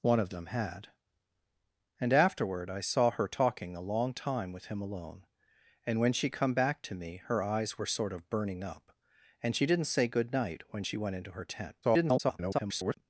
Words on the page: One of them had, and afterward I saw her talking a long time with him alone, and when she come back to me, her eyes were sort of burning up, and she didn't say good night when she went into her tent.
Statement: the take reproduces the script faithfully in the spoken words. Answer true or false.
false